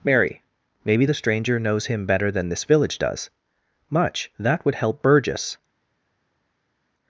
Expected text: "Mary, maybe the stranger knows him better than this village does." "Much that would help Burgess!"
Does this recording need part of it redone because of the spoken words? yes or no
no